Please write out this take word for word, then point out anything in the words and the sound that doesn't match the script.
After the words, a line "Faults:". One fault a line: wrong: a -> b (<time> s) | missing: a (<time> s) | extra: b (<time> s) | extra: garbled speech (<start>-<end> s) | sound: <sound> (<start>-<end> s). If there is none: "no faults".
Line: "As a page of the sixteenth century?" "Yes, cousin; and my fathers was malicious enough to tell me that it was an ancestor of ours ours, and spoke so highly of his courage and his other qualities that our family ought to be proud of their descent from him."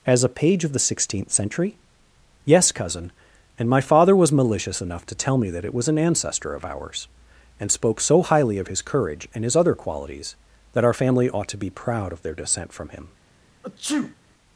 "As a page of the sixteenth century?" "Yes, cousin; and my father was malicious enough to tell me that it was an ancestor of ours, and spoke so highly of his courage and his other qualities that our family ought to be proud of their descent from him."
Faults:
wrong: fathers -> father (3.8 s)
missing: ours (7.1 s)
sound: sneeze (13.6-14.2 s)